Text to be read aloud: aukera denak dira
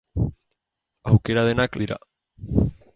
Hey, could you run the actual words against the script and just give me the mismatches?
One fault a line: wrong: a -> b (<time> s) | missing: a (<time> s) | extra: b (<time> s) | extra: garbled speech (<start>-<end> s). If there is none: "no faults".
no faults